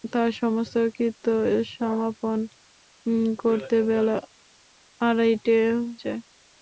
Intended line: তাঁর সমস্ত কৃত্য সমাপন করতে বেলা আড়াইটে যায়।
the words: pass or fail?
pass